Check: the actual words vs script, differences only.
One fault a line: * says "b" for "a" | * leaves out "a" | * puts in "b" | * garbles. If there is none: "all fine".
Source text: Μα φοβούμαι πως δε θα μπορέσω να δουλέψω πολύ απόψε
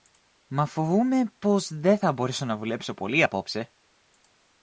all fine